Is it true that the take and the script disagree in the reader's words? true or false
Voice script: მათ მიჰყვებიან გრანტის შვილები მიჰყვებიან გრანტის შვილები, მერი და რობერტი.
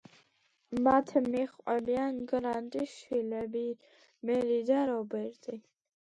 true